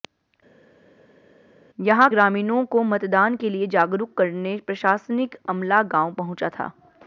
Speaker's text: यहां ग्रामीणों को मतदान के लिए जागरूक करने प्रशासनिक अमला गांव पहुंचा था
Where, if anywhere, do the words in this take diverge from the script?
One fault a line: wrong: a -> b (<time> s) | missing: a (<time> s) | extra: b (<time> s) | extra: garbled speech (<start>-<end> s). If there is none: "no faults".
no faults